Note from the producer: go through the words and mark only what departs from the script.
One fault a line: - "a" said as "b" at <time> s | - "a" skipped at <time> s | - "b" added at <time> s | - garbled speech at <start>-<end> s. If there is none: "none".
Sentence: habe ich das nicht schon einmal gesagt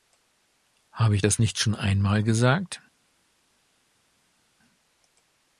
none